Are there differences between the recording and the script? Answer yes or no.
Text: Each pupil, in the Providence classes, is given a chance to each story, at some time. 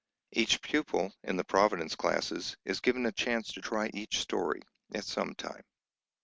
yes